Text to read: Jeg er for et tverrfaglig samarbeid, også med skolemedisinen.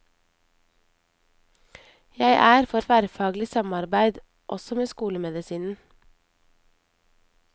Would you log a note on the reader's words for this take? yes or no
yes